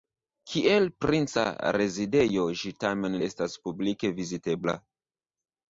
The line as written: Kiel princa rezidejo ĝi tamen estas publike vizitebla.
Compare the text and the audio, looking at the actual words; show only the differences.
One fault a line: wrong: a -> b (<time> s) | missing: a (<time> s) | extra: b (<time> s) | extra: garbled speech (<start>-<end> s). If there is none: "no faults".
no faults